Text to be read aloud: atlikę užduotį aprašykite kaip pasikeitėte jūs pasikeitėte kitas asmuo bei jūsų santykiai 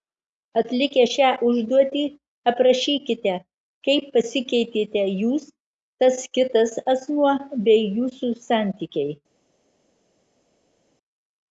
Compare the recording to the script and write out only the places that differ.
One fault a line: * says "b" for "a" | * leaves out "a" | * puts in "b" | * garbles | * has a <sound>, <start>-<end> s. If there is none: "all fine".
* puts in "šią"
* says "tas" for "pasikeitėte"